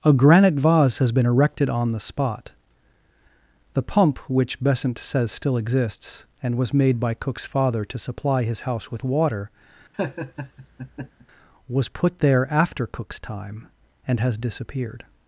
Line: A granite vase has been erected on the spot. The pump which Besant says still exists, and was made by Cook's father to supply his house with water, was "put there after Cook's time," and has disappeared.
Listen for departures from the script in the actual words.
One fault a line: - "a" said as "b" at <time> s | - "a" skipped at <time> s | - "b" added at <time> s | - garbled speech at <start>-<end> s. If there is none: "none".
none